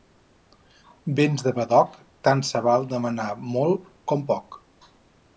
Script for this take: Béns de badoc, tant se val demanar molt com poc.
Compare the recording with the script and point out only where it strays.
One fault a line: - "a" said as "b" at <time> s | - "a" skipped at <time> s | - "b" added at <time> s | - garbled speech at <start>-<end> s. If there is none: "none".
none